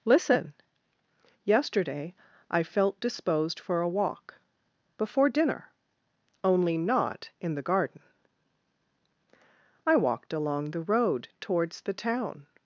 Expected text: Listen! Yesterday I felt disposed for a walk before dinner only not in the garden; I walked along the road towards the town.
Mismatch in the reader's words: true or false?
false